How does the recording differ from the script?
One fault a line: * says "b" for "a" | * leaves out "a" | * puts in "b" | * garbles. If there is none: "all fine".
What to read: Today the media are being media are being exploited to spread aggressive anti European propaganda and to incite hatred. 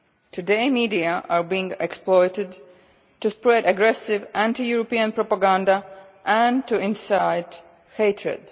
* leaves out "media are being"